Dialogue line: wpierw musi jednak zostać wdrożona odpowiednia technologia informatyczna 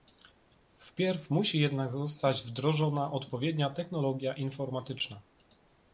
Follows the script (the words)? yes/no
yes